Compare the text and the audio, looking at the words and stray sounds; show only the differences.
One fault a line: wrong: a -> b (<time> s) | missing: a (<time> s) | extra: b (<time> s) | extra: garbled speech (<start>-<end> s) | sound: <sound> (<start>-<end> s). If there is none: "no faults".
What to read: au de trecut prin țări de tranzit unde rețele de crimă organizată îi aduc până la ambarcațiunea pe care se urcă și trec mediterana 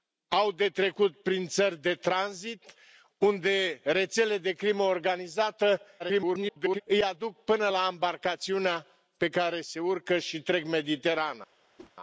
extra: garbled speech (6.0-6.8 s)
sound: whoosh (11.8-11.9 s)